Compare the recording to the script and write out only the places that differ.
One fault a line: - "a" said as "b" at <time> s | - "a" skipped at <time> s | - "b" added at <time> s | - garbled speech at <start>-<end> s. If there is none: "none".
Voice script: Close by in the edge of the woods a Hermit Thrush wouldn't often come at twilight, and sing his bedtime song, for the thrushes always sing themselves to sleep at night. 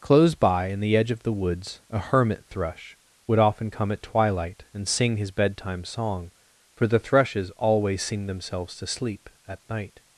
- "wouldn't" said as "would" at 3.3 s